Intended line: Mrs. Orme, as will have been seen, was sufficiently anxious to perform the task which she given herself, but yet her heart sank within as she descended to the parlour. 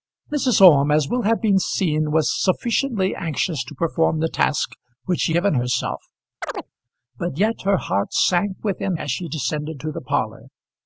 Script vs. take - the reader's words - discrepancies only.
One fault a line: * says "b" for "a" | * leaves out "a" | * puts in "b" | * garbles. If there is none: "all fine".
all fine